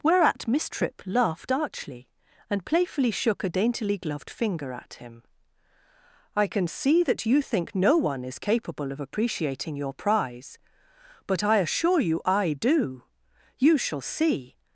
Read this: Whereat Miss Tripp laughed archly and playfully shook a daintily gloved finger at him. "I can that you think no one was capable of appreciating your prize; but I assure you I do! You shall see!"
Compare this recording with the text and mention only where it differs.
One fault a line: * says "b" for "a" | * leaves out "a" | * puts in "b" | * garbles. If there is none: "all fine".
* puts in "see"
* says "is" for "was"